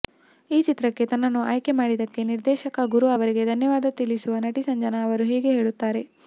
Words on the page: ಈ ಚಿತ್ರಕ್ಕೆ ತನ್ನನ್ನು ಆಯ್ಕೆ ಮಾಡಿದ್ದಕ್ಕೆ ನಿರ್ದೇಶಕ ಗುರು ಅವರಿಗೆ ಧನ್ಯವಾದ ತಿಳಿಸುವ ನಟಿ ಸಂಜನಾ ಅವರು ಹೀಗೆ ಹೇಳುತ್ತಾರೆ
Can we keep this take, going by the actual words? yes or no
yes